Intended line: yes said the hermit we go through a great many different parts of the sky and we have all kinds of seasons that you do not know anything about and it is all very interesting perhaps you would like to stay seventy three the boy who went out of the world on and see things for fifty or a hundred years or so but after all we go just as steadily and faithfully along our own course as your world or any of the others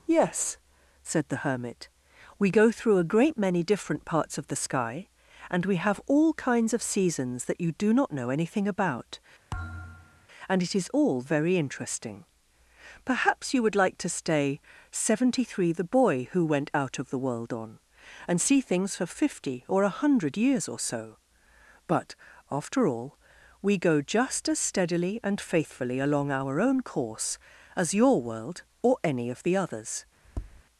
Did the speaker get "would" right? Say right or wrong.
right